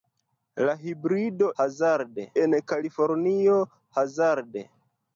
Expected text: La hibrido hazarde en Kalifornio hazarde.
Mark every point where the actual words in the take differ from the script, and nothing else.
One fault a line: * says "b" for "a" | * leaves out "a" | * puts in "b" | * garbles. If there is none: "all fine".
all fine